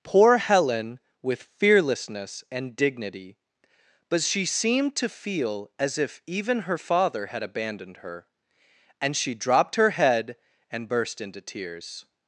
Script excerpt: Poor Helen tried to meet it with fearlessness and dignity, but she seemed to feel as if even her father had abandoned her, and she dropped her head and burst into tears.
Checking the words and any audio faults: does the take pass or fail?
fail